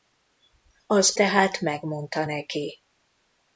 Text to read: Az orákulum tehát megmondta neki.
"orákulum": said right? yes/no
no